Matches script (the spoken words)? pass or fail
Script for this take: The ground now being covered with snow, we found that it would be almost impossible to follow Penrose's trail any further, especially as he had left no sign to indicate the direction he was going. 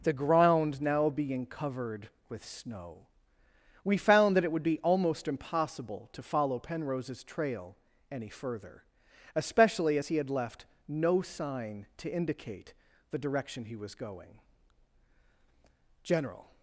fail